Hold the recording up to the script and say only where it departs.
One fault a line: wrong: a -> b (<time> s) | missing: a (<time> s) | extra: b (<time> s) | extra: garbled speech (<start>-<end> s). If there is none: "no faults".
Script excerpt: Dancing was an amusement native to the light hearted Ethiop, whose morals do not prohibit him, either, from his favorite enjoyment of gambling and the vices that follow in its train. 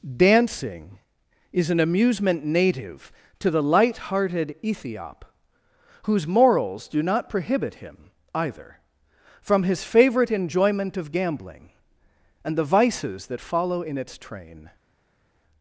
wrong: was -> is (1.5 s)